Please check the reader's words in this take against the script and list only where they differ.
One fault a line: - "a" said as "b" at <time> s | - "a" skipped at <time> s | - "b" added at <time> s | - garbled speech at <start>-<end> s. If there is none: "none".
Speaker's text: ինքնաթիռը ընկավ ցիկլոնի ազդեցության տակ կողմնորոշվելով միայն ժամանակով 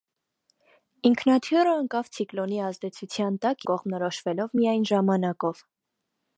none